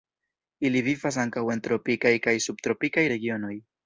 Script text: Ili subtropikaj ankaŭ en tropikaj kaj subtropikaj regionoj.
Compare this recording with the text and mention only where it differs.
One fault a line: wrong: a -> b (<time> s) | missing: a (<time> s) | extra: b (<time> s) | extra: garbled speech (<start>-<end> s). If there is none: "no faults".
wrong: subtropikaj -> vivas (0.9 s)